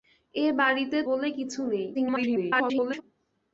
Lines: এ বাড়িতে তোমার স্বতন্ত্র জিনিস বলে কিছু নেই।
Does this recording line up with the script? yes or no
no